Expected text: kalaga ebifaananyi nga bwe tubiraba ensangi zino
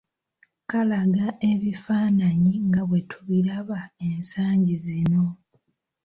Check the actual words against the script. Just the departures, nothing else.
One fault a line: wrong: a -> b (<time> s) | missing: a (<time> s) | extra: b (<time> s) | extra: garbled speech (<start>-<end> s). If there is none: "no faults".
no faults